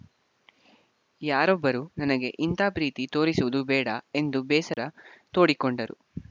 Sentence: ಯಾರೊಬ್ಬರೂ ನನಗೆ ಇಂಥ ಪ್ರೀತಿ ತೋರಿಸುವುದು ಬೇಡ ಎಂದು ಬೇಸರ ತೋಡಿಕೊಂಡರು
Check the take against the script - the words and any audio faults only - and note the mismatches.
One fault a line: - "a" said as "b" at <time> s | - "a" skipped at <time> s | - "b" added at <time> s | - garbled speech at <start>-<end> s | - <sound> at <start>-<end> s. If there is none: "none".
- dropout at 4.7-4.8 s